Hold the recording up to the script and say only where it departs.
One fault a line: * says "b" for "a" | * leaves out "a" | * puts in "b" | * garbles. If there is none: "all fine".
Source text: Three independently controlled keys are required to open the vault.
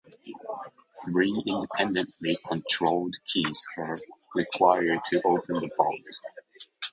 all fine